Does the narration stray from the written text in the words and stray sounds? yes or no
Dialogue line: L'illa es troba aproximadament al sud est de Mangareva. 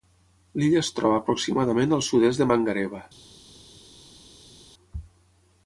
no